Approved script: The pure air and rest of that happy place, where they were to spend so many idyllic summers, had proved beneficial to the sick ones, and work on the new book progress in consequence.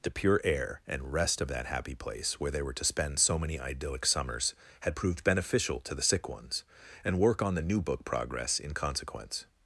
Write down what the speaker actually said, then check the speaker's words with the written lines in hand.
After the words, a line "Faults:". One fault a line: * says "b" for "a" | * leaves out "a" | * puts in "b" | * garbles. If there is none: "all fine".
The pure air and rest of that happy place, where they were to spend so many idyllic summers, had proved beneficial to the sick ones, and work on the new book progress in consequence.
Faults:
all fine